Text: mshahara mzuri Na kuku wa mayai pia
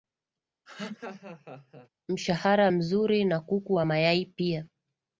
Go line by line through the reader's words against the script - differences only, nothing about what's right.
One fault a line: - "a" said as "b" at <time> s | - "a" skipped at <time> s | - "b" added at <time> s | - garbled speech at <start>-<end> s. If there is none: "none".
none